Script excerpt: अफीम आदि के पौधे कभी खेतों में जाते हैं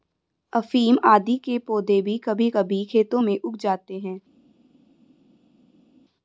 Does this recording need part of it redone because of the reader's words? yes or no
yes